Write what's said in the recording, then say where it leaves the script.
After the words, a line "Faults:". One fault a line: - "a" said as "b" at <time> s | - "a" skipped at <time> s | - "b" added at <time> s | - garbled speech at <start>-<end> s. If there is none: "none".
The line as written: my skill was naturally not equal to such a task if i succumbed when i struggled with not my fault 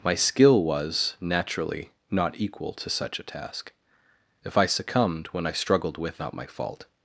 my skill was naturally not equal to such a task if i succumbed when i struggled with not my fault
Faults:
none